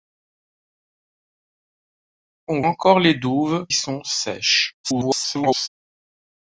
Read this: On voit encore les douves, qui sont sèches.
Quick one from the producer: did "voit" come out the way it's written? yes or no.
no